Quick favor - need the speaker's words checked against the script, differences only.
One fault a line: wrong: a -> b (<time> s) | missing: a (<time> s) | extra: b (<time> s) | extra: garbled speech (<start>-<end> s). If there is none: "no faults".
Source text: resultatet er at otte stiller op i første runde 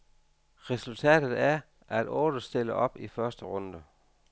no faults